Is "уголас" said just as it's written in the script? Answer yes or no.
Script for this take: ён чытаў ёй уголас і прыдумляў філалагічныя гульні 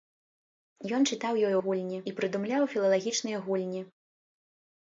no